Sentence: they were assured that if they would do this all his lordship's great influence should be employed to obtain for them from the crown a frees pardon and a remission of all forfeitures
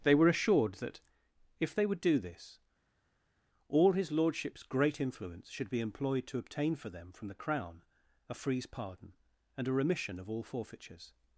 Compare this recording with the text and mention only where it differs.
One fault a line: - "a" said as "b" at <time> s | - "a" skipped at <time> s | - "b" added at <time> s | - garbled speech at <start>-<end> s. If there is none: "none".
none